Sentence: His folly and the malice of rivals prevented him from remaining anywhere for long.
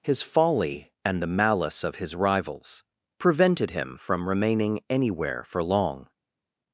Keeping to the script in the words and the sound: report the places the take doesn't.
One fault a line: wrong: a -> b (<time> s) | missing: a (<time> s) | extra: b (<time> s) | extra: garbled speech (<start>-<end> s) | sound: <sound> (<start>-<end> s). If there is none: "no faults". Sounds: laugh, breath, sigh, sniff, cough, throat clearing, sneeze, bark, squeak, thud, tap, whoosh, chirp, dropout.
extra: his (2.0 s)